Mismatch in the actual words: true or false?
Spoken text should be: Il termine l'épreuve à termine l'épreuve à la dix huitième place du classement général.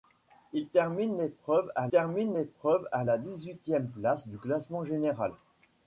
false